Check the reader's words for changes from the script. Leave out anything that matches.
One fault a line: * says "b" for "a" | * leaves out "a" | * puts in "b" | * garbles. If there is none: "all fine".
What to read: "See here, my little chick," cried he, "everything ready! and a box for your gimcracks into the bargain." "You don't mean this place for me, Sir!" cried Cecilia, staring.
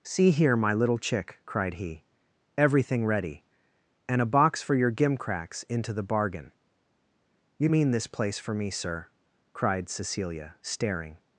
* leaves out "don't"